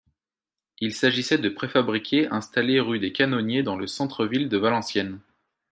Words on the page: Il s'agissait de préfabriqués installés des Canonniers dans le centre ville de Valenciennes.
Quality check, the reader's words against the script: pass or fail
fail